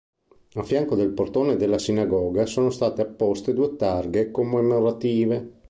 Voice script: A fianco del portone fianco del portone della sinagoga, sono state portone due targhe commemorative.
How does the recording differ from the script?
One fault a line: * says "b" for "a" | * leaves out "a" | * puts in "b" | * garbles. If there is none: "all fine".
* leaves out "fianco del portone"
* says "apposte" for "portone"